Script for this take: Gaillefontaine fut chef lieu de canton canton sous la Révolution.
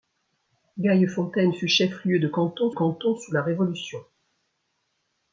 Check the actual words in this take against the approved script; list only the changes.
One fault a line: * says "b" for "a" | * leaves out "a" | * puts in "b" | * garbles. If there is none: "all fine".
all fine